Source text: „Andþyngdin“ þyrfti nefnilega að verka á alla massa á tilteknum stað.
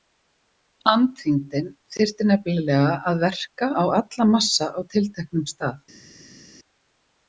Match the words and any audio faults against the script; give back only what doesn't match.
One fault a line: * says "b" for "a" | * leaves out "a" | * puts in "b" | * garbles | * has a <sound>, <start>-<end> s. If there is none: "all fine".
all fine